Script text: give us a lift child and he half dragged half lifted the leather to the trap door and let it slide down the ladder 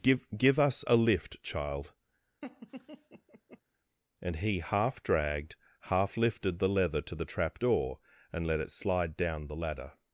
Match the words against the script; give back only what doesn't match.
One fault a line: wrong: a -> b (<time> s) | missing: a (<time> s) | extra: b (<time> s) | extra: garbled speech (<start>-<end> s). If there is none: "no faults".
extra: give (0.3 s)